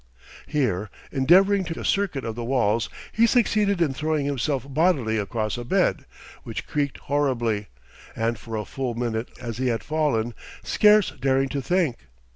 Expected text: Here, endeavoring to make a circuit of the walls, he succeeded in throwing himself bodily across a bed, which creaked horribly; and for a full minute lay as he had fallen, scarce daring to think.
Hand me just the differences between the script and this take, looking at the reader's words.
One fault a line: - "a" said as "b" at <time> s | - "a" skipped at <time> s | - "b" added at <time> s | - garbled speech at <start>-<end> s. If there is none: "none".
- "make" skipped at 1.8 s
- "lay" skipped at 9.4 s